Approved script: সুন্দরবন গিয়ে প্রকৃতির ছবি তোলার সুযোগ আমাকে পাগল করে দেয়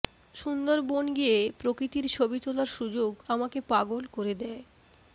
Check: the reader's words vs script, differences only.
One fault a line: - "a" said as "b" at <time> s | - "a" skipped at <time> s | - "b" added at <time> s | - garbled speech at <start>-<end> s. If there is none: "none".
none